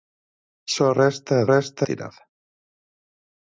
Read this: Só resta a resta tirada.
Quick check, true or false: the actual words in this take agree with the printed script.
true